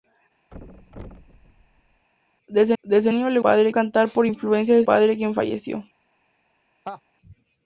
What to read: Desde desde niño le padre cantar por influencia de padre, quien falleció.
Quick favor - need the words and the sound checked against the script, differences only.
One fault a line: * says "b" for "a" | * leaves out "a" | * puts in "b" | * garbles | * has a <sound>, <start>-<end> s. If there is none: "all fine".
* has a thud, 0.5-2.1 s
* has a laugh, 6.8-7.0 s